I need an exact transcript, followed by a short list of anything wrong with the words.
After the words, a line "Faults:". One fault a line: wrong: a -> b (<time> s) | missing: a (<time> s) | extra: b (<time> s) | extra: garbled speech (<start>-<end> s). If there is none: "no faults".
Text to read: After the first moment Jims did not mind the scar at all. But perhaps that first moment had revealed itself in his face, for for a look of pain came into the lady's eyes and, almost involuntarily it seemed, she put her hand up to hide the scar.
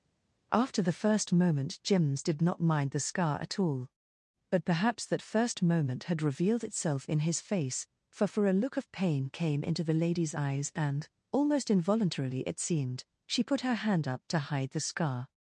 After the first moment Jims did not mind the scar at all. But perhaps that first moment had revealed itself in his face, for for a look of pain came into the lady's eyes and, almost involuntarily it seemed, she put her hand up to hide the scar.
Faults:
no faults